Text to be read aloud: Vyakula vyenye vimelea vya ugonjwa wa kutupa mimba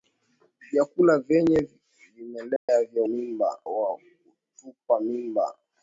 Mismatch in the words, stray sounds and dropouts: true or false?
true